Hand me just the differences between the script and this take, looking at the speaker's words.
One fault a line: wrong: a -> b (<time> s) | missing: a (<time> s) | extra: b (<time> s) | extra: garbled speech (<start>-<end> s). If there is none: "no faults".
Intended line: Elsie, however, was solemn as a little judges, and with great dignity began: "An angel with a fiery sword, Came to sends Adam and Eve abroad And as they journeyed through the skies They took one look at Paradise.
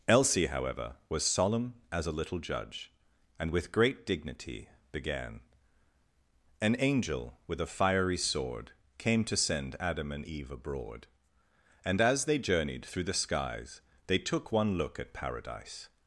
wrong: judges -> judge (2.4 s)
wrong: sends -> send (9.3 s)